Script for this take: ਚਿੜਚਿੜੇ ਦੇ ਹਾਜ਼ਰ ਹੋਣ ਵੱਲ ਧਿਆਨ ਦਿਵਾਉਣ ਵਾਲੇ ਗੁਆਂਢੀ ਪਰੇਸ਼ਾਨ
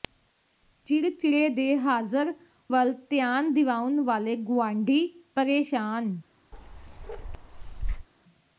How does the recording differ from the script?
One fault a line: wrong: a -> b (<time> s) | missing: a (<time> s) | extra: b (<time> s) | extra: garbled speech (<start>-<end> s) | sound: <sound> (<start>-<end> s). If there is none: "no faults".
missing: ਹੋਣ (2.3 s)
sound: bark (6.5-8.1 s)